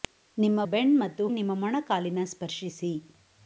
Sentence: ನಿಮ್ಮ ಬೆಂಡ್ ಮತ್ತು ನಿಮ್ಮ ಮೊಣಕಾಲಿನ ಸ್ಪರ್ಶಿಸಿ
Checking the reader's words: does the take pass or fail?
pass